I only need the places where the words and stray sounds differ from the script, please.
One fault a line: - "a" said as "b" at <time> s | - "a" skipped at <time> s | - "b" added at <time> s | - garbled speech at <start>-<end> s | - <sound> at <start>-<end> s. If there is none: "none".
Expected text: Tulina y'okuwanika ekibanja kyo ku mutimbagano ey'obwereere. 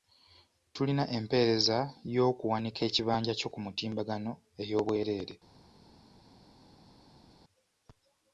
- "empeereza" added at 1.2 s